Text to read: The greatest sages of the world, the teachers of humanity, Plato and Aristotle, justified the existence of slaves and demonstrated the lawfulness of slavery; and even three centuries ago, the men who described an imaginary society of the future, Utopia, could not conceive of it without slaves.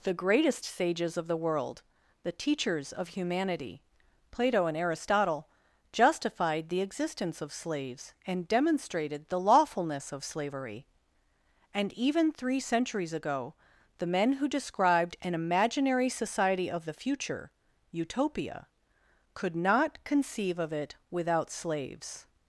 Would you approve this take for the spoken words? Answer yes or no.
yes